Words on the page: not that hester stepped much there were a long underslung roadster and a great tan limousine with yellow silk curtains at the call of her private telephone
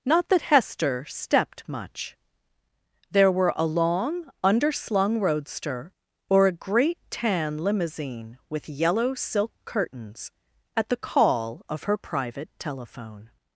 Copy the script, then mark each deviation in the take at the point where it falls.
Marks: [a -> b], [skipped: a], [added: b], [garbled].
not that hester stepped much there were a long underslung roadster [and -> or] a great tan limousine with yellow silk curtains at the call of her private telephone